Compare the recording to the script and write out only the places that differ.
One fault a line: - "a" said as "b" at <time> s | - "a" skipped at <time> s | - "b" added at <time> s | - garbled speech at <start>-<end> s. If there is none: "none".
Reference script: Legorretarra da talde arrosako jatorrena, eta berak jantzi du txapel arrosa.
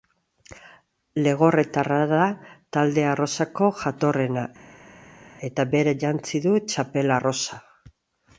none